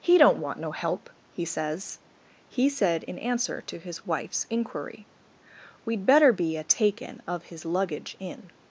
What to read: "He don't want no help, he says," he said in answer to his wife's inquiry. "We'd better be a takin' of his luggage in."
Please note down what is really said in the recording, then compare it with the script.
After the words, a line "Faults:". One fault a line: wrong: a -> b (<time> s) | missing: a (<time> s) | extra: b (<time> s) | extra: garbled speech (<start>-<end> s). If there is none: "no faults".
"He don't want no help, he says," he said in answer to his wife's inquiry. "We'd better be a takin' of his luggage in."
Faults:
no faults